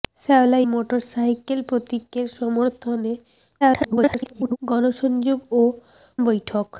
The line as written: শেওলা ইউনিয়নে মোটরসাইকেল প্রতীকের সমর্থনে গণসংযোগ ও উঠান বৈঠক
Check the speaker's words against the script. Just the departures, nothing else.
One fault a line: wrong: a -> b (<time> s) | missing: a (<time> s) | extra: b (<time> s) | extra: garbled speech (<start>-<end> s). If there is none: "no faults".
missing: ইউনিয়নে (0.6 s)
extra: garbled speech (3.6-4.6 s)
missing: উঠান (5.6 s)